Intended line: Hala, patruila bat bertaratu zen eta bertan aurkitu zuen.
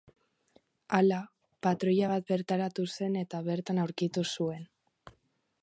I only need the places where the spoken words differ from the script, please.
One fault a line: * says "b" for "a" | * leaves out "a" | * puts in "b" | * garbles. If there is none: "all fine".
all fine